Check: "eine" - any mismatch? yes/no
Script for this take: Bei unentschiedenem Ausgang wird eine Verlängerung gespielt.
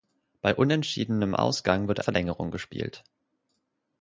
yes